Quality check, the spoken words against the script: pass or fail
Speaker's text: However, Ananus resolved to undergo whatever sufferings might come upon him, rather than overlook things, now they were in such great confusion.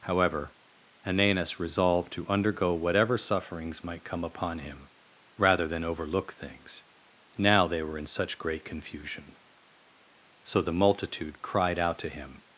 fail